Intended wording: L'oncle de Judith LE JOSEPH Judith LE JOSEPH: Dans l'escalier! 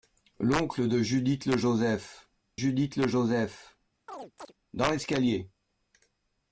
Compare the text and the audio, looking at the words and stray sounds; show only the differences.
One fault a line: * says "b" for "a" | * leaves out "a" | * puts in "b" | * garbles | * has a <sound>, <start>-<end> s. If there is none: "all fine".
* has a chirp, 4.1-4.5 s